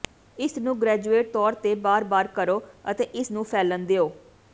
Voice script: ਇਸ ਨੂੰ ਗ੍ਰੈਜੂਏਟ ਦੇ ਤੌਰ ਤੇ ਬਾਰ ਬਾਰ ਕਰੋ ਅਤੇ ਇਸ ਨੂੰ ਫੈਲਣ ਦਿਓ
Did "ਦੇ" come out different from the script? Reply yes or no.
yes